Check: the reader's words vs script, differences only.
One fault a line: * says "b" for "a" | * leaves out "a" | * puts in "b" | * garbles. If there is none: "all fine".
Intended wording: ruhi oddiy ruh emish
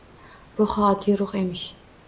all fine